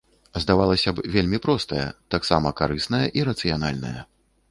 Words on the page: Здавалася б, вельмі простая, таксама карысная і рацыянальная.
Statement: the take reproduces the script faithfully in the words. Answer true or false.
true